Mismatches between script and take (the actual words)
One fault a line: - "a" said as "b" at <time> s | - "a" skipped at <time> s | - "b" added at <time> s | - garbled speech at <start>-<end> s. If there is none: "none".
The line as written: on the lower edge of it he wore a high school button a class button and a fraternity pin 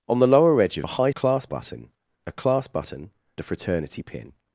- "it he wore" skipped at 0.9 s
- "school" said as "class" at 1.1 s
- "and" skipped at 3.1 s